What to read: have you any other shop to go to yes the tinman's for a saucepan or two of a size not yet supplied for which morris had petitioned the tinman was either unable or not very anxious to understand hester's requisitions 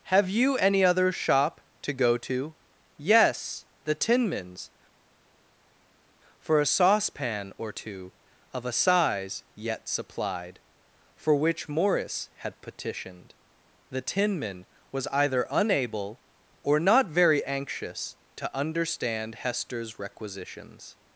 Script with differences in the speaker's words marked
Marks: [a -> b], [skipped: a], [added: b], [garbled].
have you any other shop to go to yes the tinman's for a saucepan or two of a size [skipped: not] yet supplied for which morris had petitioned the tinman was either unable or not very anxious to understand hester's requisitions